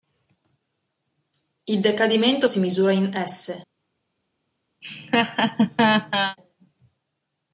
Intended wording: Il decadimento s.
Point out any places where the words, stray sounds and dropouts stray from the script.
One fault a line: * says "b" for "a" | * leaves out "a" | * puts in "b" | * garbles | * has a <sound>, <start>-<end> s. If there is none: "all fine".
* puts in "si misura in"
* has a laugh, 4.8-6.4 s